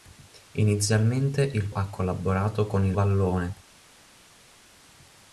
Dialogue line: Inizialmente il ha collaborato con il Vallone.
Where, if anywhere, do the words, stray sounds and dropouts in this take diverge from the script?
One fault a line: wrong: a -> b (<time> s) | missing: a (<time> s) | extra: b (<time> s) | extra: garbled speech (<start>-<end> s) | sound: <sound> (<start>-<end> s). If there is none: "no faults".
no faults